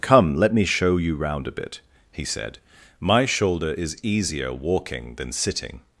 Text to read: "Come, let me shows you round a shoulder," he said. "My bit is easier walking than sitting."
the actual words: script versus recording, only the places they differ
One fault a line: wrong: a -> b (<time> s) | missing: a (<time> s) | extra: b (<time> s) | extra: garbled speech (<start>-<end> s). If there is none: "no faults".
wrong: shows -> show (0.7 s)
wrong: shoulder -> bit (1.5 s)
wrong: bit -> shoulder (3.3 s)